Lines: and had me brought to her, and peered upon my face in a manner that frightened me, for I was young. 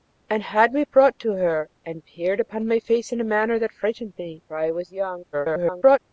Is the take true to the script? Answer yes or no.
no